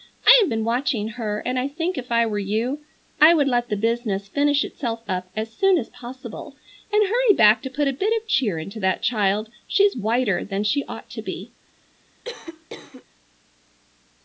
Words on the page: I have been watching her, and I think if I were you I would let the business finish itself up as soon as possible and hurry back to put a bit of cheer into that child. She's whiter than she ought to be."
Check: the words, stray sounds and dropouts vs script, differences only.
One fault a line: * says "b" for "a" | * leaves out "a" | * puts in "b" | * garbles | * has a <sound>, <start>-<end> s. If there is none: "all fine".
* has a cough, 12.2-13.0 s